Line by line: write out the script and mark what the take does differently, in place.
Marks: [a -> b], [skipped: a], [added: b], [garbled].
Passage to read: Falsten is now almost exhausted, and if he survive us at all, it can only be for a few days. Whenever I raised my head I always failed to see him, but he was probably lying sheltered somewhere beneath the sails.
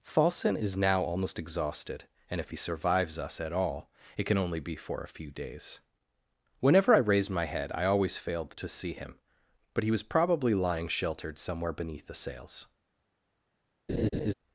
Falsten is now almost exhausted, and if he [survive -> survives] us at all, it can only be for a few days. Whenever I raised my head I always failed to see him, but he was probably lying sheltered somewhere beneath the sails.